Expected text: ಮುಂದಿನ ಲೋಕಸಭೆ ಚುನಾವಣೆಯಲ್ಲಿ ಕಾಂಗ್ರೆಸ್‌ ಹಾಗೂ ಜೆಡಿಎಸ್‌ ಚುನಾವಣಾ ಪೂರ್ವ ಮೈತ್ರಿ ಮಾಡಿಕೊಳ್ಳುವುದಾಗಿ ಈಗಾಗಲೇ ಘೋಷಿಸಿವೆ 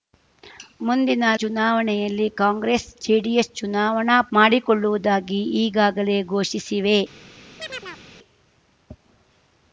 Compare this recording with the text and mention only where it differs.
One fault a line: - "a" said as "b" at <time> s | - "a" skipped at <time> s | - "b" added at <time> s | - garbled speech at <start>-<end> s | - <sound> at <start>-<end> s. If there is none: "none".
- "ಲೋಕಸಭೆ" skipped at 1.2 s
- "ಹಾಗೂ" skipped at 2.9 s
- "ಪೂರ್ವ ಮೈತ್ರಿ" skipped at 4.2 s
- chirp at 7.6-8.0 s